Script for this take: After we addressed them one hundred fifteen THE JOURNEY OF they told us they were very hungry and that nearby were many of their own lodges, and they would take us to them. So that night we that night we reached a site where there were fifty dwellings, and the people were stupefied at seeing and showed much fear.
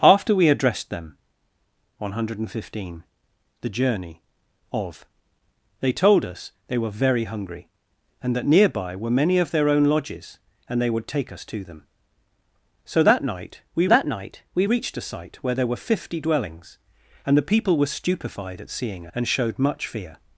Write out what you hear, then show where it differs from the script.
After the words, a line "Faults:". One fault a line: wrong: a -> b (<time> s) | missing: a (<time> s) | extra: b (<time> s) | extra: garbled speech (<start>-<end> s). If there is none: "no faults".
After we addressed them one hundred fifteen THE JOURNEY OF they told us they were very hungry and that nearby were many of their own lodges, and they would take us to them. So that night we that night we reached a site where there were fifty dwellings, and the people were stupefied at seeing and showed much fear.
Faults:
no faults